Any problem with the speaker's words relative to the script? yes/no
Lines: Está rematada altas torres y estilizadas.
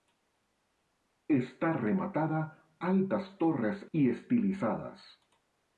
no